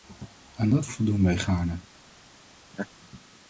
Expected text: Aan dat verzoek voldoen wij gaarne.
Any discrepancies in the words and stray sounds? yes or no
yes